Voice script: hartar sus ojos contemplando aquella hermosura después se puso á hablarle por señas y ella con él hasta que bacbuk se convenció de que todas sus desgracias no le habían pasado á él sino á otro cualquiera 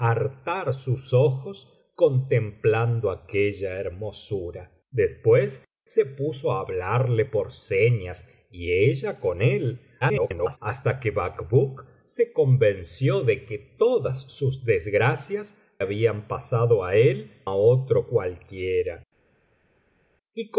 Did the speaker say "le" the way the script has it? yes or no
no